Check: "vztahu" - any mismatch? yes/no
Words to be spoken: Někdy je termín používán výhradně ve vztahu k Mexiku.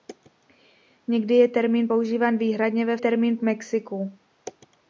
yes